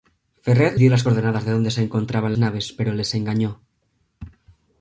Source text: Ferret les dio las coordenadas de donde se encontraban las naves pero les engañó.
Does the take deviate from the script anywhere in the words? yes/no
yes